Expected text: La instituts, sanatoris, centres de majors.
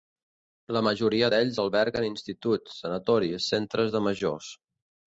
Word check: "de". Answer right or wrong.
right